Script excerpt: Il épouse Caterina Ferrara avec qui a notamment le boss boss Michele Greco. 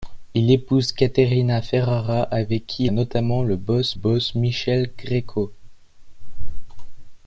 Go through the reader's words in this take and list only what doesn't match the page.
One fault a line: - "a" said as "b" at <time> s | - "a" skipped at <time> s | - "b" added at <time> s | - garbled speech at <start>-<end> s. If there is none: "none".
none